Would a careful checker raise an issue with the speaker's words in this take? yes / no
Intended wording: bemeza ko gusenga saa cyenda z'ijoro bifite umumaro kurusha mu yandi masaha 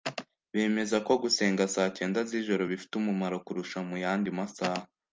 no